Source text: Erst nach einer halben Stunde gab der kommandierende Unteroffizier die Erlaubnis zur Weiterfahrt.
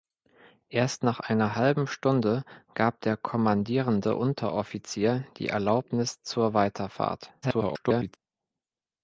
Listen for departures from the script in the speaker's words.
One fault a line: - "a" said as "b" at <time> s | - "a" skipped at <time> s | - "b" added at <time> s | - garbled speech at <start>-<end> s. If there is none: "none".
- garbled speech at 7.4-8.2 s